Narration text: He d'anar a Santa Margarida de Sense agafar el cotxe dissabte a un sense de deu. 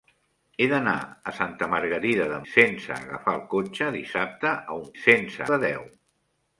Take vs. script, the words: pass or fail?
pass